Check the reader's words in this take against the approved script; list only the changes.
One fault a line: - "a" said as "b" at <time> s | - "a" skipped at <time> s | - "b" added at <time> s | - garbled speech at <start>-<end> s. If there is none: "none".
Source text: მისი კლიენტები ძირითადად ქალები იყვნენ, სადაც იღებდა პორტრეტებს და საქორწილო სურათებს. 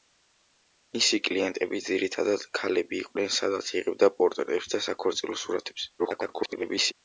- garbled speech at 6.0-6.9 s